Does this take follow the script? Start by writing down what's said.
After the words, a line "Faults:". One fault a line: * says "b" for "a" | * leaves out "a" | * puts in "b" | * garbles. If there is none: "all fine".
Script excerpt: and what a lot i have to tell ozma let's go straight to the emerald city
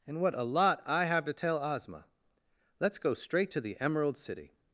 and what a lot i have to tell ozma let's go straight to the emerald city
Faults:
all fine